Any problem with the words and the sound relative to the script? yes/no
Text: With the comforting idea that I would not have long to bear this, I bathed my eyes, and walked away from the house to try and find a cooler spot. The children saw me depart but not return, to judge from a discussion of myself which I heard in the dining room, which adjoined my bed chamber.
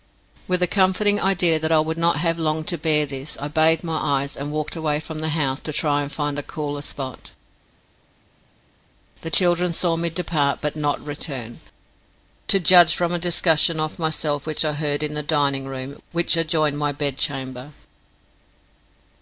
no